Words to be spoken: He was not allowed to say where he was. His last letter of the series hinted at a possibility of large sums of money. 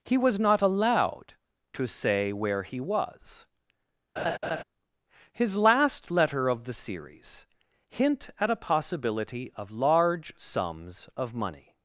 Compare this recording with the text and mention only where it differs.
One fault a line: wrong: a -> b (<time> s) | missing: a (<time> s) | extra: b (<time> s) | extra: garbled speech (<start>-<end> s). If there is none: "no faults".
wrong: hinted -> hint (7.9 s)